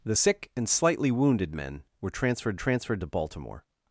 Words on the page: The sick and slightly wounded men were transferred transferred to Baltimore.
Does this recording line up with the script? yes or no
yes